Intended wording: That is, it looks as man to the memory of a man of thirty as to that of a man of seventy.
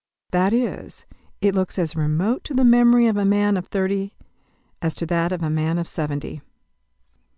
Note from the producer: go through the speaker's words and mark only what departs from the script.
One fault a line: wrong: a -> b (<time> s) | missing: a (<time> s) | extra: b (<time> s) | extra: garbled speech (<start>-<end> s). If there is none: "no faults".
wrong: man -> remote (1.9 s)